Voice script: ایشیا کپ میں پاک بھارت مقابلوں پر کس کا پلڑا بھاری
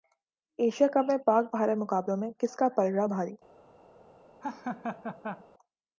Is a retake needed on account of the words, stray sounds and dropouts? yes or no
yes